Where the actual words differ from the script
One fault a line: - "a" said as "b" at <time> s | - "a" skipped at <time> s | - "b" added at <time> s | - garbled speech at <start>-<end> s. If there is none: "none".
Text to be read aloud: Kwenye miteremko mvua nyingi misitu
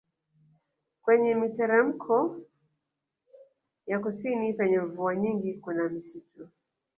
- "ya kusini penye" added at 3.9 s
- "kuna" added at 5.5 s